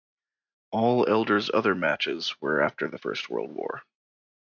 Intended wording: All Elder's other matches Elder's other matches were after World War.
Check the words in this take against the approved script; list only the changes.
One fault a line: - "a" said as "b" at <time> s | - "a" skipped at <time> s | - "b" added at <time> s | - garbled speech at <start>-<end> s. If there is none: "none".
- "Elder's other matches were after" said as "were after the First" at 2.4 s